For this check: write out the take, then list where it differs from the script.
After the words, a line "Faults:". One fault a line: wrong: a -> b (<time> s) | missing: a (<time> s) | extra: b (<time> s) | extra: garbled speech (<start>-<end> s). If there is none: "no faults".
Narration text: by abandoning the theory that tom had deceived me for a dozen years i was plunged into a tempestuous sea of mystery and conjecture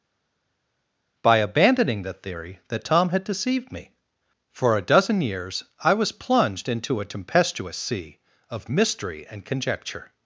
by abandoning the theory that tom had deceived me for a dozen years i was plunged into a tempestuous sea of mystery and conjecture
Faults:
no faults